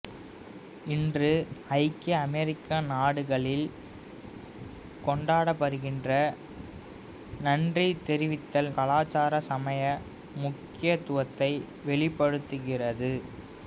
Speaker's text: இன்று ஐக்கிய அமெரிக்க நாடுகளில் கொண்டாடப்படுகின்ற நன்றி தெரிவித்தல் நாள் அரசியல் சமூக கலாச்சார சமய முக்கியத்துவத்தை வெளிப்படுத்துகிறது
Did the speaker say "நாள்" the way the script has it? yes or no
no